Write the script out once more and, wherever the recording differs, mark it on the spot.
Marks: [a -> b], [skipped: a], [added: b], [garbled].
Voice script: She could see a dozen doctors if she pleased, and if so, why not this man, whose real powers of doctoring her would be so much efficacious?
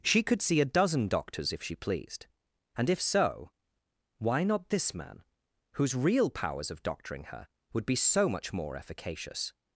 She could see a dozen doctors if she pleased, and if so, why not this man, whose real powers of doctoring her would be so much [added: more] efficacious?